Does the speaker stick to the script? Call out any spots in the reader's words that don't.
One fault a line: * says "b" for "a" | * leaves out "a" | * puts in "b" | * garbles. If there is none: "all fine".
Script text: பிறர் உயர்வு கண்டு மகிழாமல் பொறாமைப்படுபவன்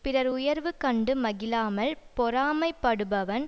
all fine